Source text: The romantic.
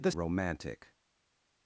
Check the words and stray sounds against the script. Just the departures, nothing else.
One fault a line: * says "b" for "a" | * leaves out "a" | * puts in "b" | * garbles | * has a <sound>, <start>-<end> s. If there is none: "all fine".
all fine